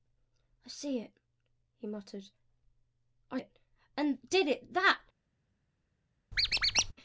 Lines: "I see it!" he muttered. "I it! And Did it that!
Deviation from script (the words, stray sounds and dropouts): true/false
true